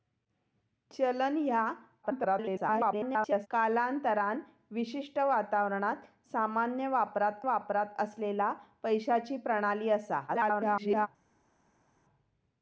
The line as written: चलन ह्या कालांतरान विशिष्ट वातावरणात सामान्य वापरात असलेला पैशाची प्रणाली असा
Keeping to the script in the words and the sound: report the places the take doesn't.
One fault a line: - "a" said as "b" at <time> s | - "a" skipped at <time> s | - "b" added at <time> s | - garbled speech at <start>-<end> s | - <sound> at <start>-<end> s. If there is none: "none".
- garbled speech at 2.0-3.5 s
- "वापरात" added at 7.4 s
- garbled speech at 10.3-11.1 s